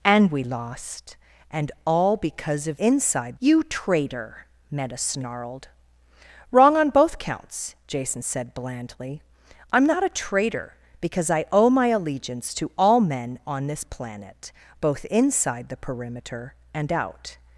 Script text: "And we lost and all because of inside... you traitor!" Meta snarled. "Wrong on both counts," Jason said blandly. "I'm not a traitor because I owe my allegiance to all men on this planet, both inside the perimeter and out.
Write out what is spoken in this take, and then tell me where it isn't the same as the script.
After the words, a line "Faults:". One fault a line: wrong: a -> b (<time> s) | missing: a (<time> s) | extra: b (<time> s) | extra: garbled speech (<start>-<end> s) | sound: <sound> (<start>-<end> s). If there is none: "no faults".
"And we lost and all because of inside... you traitor!" Meta snarled. "Wrong on both counts," Jason said blandly. "I'm not a traitor because I owe my allegiance to all men on this planet, both inside the perimeter and out.
Faults:
no faults